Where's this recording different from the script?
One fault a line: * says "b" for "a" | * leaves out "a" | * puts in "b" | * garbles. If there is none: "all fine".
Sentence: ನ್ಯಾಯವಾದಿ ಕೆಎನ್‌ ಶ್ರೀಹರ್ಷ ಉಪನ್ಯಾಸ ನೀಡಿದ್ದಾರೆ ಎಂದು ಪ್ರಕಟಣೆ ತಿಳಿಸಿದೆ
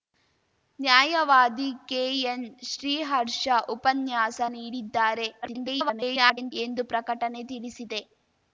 * garbles